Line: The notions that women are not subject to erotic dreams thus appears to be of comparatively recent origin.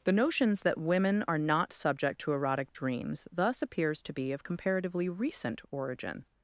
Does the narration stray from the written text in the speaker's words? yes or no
no